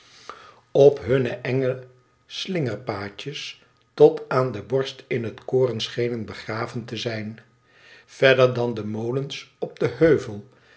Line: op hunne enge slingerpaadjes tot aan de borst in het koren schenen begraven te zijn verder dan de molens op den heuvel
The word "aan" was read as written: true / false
true